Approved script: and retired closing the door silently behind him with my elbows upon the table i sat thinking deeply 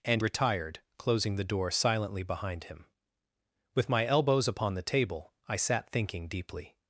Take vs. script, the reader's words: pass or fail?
pass